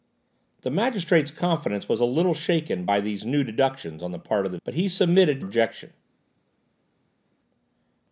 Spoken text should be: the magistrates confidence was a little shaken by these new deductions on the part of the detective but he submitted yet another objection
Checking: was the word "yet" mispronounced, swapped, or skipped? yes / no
yes